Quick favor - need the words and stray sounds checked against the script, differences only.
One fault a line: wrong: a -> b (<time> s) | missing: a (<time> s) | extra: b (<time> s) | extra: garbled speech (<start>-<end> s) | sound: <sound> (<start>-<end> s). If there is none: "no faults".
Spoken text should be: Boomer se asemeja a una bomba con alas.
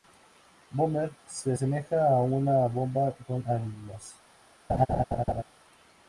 sound: laugh (4.7-5.4 s)